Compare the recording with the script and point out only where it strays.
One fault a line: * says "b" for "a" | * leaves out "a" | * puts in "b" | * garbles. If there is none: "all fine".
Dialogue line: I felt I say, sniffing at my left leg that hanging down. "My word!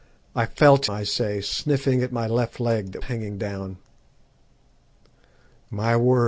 all fine